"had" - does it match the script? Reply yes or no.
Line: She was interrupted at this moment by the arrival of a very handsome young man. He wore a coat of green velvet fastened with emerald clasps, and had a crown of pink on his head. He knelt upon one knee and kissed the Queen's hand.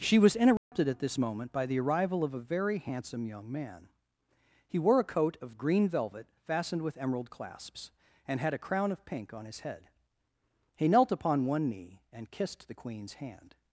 yes